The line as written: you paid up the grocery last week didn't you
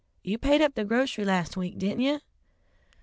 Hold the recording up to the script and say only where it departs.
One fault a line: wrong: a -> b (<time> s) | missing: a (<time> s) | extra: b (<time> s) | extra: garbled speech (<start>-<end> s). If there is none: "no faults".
no faults